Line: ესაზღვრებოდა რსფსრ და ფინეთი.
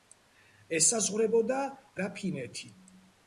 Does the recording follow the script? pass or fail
fail